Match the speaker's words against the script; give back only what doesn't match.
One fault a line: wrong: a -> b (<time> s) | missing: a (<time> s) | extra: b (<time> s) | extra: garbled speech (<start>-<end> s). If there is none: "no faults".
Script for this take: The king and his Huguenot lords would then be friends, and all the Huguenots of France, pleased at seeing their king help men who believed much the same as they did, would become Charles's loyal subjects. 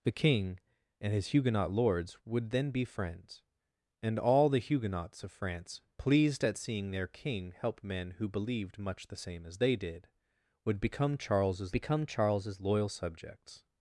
extra: become Charles's (11.7 s)